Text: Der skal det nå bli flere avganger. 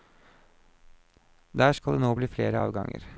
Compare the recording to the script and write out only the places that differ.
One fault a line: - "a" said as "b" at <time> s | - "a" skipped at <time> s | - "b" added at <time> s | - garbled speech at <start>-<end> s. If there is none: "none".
none